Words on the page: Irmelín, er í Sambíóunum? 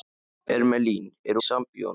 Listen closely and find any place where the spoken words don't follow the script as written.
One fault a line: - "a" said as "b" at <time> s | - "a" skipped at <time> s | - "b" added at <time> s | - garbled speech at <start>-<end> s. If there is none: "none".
none